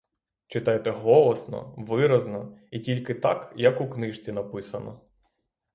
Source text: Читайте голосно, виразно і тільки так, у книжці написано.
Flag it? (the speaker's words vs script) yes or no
yes